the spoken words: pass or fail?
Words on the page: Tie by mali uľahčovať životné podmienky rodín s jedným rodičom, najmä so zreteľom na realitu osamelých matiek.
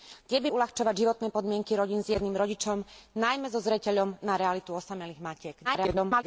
fail